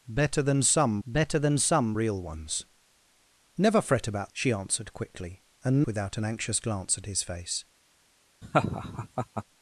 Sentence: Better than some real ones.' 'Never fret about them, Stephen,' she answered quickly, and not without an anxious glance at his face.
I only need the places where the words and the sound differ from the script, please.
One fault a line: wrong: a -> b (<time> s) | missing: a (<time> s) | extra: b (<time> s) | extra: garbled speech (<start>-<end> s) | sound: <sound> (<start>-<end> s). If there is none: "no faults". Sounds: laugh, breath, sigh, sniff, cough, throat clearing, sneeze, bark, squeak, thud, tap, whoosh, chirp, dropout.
extra: better than some (1.1 s)
missing: them Stephen (4.3 s)
missing: not (5.8 s)
sound: laugh (8.4-9.4 s)